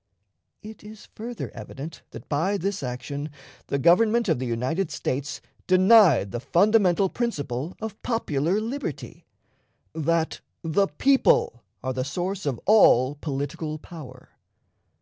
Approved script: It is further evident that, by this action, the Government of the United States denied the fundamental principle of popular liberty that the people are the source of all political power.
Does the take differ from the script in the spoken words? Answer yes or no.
no